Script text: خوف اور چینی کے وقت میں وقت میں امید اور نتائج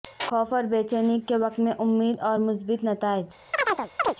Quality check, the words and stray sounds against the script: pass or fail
fail